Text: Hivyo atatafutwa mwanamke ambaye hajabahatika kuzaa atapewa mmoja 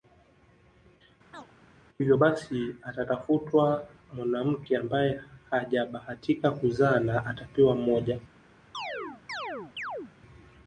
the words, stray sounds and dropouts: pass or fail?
fail